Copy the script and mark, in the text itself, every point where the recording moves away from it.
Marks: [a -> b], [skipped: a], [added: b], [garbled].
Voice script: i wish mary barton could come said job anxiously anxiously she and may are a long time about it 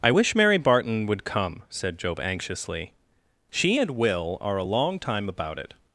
i wish mary barton [could -> would] come said job anxiously [skipped: anxiously] she and [may -> will] are a long time about it